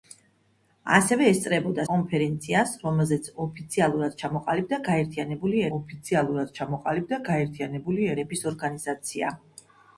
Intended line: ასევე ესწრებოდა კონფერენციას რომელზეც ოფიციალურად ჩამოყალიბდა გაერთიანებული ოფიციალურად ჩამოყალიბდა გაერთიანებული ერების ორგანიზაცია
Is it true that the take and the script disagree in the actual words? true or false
false